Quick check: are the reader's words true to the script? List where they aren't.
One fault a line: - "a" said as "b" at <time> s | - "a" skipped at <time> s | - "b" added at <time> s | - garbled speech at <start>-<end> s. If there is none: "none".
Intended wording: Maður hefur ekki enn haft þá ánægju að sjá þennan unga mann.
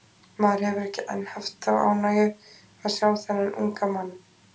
none